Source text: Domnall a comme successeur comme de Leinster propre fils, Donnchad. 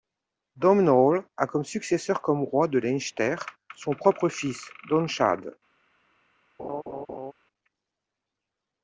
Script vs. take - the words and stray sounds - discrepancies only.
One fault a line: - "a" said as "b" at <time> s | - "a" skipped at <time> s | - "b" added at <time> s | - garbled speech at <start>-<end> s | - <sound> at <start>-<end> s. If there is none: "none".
- "roi" added at 2.4 s
- "son" added at 3.8 s
- laugh at 6.6-7.3 s